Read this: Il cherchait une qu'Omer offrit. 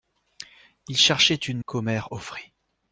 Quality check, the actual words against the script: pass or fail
pass